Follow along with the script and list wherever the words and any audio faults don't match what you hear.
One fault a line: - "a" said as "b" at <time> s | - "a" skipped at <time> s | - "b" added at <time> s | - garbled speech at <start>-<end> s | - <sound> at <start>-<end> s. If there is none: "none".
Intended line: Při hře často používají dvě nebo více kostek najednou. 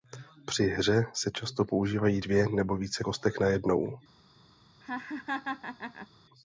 - "se" added at 1.1 s
- laugh at 4.8-6.1 s